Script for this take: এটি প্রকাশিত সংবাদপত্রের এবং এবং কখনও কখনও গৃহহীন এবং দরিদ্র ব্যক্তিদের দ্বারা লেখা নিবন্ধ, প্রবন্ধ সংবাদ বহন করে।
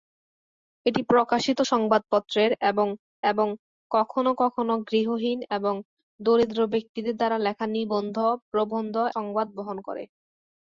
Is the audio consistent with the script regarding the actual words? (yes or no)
yes